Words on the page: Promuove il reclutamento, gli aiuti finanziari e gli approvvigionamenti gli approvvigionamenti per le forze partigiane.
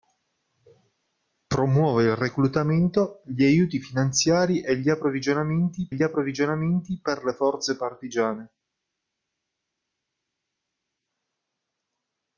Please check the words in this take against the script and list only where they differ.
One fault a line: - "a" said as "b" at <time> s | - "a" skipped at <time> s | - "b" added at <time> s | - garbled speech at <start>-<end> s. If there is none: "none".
none